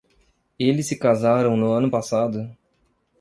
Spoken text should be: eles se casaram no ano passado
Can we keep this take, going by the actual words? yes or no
yes